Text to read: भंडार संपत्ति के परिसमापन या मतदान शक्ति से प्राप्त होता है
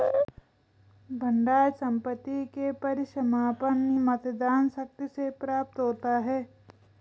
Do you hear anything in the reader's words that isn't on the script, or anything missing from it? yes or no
yes